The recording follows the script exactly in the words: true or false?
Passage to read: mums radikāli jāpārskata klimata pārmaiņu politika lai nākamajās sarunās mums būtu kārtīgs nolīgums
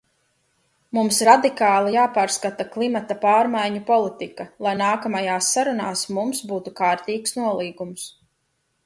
true